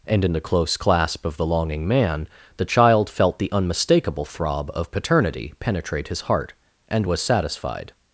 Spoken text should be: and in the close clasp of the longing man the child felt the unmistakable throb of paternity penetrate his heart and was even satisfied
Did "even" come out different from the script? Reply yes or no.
yes